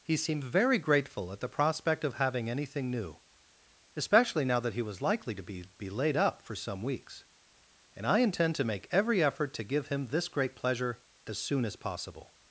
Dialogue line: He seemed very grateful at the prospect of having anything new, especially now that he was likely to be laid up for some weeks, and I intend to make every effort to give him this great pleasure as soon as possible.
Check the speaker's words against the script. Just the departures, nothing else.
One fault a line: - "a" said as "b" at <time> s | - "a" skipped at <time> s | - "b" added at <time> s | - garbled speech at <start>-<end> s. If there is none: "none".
- "be" added at 5.8 s